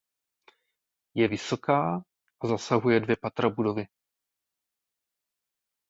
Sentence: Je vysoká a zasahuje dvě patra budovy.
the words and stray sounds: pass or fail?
pass